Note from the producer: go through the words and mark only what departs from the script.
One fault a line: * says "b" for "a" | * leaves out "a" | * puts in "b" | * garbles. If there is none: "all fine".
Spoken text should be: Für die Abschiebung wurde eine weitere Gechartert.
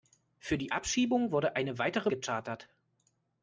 all fine